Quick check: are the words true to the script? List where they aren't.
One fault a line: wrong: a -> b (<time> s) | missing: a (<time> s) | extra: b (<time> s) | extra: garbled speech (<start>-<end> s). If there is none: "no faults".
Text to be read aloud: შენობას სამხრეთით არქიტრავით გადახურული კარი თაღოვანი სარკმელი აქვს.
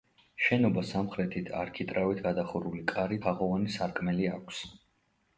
no faults